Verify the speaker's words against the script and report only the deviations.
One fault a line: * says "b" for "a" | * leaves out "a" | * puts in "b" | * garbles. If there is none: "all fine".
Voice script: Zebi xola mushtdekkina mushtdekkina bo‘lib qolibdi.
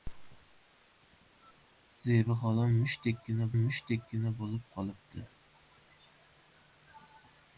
all fine